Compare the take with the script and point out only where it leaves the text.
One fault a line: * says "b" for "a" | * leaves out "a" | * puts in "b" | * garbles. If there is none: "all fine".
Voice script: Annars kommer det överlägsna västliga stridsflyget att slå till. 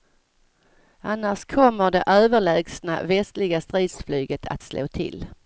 all fine